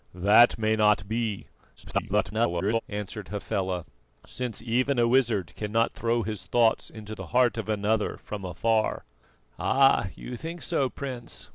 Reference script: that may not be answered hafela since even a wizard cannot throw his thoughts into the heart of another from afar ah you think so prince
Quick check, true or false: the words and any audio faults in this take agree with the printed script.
false